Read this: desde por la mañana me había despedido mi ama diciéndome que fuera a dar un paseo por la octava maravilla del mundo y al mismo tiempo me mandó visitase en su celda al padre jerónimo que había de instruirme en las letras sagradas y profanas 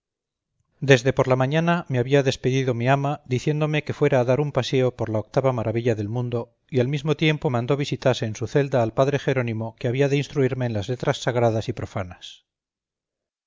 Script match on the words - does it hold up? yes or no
no